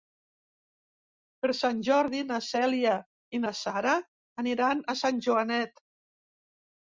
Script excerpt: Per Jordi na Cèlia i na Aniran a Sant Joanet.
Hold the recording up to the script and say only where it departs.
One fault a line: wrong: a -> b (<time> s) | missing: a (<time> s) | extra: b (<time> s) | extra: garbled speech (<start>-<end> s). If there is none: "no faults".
extra: Sant (1.6 s)
extra: Sara (3.6 s)